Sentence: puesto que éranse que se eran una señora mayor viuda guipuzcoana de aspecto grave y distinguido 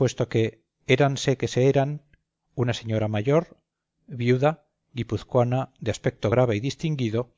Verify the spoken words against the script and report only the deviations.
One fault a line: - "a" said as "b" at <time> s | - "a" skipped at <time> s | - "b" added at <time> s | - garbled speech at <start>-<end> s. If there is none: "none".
none